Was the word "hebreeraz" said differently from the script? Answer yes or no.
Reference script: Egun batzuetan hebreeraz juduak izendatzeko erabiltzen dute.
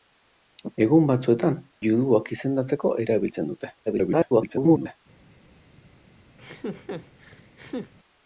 yes